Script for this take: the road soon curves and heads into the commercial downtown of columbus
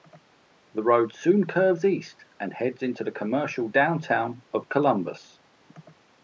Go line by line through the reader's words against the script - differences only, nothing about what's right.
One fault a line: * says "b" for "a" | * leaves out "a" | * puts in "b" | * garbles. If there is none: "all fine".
* puts in "east"